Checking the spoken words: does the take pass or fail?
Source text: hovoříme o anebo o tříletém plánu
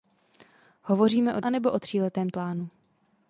pass